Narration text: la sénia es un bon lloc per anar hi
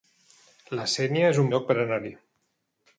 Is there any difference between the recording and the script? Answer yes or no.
yes